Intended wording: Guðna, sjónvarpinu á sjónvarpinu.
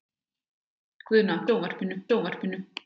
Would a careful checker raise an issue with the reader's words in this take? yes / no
no